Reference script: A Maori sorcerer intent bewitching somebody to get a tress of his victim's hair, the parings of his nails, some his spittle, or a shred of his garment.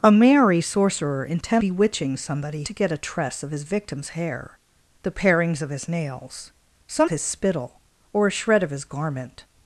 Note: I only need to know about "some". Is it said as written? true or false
true